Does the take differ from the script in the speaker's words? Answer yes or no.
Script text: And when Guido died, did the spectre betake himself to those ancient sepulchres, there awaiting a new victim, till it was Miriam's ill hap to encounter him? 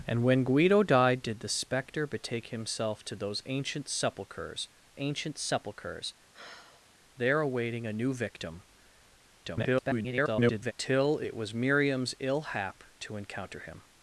yes